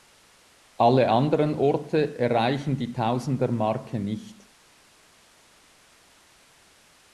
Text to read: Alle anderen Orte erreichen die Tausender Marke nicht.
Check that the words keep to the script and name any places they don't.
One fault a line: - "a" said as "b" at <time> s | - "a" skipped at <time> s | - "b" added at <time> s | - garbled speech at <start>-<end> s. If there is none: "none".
none